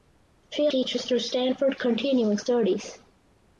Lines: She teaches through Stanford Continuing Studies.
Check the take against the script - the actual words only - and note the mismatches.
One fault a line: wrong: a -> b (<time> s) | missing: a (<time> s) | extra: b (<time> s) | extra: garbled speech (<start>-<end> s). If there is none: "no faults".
no faults